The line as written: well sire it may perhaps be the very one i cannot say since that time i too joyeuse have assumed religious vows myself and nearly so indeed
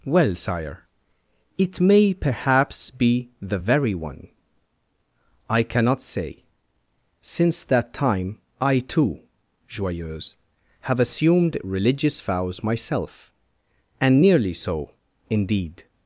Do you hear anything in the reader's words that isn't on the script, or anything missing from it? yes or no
no